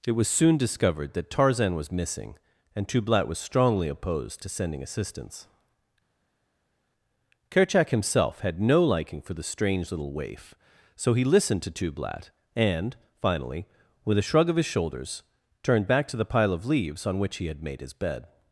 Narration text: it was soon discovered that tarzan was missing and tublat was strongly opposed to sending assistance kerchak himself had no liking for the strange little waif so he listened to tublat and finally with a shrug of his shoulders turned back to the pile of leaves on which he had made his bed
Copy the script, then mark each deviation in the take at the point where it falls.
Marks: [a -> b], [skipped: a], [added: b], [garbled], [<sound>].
it was soon discovered that tarzan was missing and tublat was strongly opposed to sending assistance kerchak himself had no liking for the strange little waif so he listened to tublat and finally with a shrug of his shoulders turned back to the pile of leaves on which he had made his bed